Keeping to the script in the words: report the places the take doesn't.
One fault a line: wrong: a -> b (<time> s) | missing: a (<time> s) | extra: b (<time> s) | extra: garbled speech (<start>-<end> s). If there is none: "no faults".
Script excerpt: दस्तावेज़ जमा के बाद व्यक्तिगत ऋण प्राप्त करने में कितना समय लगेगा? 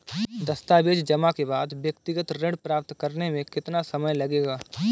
no faults